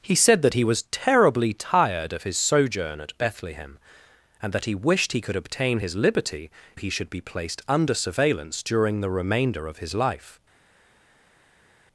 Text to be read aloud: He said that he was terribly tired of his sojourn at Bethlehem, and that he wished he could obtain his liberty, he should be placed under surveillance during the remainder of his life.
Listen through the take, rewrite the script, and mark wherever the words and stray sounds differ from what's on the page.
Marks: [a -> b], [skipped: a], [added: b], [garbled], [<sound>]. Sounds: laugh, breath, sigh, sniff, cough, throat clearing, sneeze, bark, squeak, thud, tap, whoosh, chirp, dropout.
He said that he was terribly tired of his sojourn at Bethlehem, and that he wished he could obtain his liberty, he should be placed under surveillance during the remainder of his life.